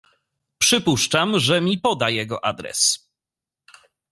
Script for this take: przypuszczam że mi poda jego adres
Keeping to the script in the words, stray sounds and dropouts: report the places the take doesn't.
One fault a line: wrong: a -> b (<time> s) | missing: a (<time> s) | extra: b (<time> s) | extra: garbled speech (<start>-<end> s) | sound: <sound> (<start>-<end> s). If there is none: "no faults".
no faults